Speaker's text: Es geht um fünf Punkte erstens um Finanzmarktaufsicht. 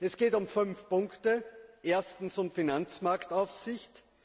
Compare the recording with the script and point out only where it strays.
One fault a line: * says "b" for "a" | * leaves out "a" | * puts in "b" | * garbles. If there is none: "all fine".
all fine